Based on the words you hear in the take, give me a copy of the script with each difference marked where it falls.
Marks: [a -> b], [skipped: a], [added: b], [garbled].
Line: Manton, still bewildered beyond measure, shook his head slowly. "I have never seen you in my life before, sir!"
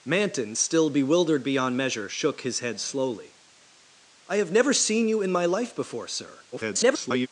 Manton, still bewildered beyond measure, shook his head slowly. "I have never seen you in my life before, sir!" [garbled]